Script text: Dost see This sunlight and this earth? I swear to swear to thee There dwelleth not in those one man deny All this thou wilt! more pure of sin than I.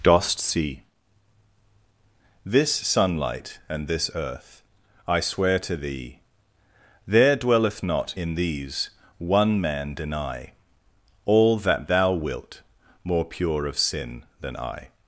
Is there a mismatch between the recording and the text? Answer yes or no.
yes